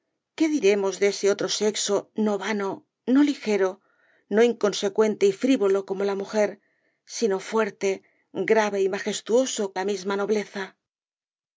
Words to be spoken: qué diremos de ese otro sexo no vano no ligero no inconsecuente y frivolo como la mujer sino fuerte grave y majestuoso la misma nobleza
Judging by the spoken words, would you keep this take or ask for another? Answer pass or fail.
pass